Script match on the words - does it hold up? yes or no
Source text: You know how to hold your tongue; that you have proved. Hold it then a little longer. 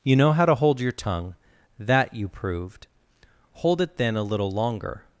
no